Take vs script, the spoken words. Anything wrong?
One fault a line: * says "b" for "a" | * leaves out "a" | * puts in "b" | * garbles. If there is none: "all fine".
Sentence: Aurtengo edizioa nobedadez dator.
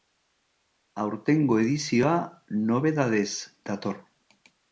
all fine